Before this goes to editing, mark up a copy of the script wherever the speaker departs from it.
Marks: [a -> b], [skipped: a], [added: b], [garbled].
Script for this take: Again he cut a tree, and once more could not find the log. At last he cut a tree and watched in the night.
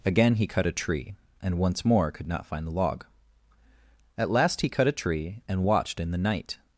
Again he cut a tree, and once more could not find the log. At last he cut a tree and watched in the night.